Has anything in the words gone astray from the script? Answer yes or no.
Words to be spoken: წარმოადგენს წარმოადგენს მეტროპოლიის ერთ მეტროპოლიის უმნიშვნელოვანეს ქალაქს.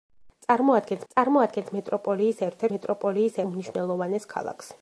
no